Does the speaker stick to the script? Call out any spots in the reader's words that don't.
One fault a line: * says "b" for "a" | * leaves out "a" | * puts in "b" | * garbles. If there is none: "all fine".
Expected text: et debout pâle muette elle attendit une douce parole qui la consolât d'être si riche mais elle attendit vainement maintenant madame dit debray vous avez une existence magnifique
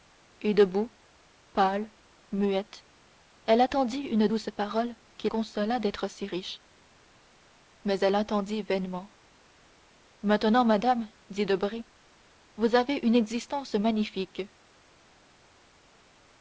* leaves out "la"